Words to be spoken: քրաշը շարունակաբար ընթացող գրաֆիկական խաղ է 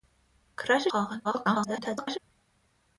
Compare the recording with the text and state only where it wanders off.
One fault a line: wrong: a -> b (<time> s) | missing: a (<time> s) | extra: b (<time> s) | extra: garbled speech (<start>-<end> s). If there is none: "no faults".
missing: շարունակաբար ընթացող գրաֆիկական (0.9 s)
extra: garbled speech (1.2-2.2 s)